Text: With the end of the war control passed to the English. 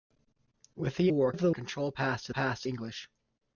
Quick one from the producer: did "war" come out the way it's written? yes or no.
no